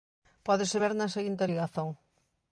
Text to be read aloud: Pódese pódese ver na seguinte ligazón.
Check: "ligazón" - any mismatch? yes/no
no